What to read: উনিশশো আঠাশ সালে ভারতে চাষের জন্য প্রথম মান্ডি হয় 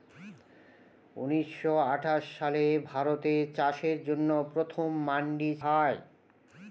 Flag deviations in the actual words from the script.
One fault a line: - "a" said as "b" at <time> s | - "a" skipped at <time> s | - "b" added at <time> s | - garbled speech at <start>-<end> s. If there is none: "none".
none